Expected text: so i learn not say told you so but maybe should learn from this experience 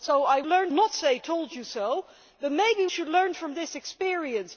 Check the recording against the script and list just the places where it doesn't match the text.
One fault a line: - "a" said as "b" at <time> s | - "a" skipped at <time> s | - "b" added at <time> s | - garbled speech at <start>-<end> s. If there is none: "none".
none